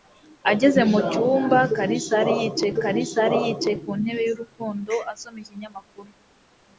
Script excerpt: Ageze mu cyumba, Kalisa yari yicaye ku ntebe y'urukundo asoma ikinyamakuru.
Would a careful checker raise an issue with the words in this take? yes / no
yes